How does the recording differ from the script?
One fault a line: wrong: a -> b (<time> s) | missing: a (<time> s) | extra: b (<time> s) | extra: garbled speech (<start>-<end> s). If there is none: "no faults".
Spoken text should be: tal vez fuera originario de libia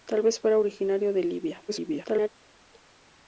extra: garbled speech (1.7-2.3 s)